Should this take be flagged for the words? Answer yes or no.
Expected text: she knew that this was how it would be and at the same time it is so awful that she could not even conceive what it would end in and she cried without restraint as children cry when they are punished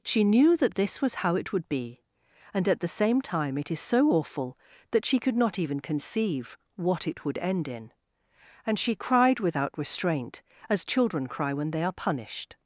no